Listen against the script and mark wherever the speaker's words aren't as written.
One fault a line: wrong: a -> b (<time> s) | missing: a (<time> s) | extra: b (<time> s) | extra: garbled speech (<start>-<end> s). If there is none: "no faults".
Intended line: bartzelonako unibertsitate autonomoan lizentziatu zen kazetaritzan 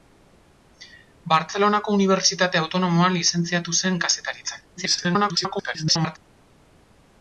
extra: garbled speech (4.8-6.2 s)